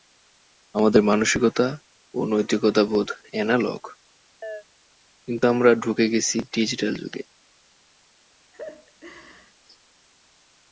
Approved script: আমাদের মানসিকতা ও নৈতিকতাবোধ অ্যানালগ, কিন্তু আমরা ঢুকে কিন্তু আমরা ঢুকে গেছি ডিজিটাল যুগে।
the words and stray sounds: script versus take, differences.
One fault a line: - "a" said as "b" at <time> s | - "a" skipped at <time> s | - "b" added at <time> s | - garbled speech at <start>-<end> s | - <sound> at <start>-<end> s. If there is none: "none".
- chirp at 4.4-4.6 s
- "কিন্তু আমরা ঢুকে" skipped at 6.1 s
- laugh at 8.5-9.5 s